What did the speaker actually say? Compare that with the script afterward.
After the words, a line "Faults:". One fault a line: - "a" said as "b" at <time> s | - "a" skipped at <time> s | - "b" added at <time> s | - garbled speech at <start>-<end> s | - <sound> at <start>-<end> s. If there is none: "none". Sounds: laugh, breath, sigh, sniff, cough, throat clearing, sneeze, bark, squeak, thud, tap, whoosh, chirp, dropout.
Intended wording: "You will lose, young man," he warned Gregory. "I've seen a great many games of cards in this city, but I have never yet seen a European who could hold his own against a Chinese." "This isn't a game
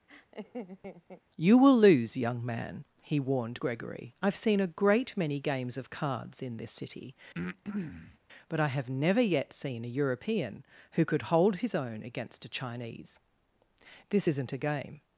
"You will lose, young man," he warned Gregory. "I've seen a great many games of cards in this city, but I have never yet seen a European who could hold his own against a Chinese." "This isn't a game
Faults:
- laugh at 0.1-1.2 s
- breath at 7.3-8.2 s